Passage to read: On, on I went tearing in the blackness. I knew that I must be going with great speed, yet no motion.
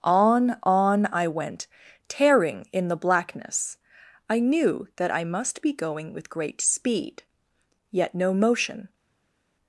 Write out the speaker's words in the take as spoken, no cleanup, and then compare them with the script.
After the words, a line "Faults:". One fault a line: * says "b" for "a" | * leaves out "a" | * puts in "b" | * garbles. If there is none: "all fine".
On, on I went tearing in the blackness. I knew that I must be going with great speed, yet no motion.
Faults:
all fine